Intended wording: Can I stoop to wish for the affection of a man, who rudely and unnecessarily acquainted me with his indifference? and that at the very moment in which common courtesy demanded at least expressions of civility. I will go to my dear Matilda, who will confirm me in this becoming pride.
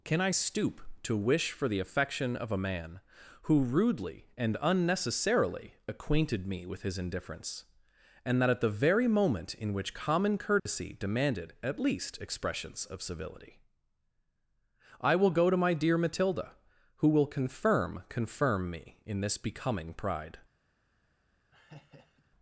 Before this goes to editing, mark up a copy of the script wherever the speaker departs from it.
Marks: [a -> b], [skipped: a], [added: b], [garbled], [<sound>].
Can I stoop to wish for the affection of a man, who rudely and unnecessarily acquainted me with his indifference? and that at the very moment in which common courtesy [dropout] demanded at least expressions of civility. I will go to my dear Matilda, who will confirm [added: confirm] me in this becoming pride. [laugh]